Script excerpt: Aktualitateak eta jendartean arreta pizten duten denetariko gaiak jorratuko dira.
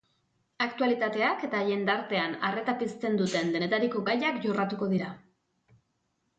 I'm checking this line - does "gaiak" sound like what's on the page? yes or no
yes